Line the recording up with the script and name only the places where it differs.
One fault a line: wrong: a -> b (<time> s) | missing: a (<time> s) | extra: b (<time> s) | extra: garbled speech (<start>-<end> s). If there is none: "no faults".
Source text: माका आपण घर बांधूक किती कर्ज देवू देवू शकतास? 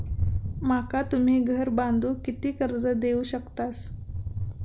wrong: आपण -> तुम्ही (1.1 s)
missing: देवू (3.2 s)